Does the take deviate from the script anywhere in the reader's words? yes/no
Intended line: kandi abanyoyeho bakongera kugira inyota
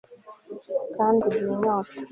yes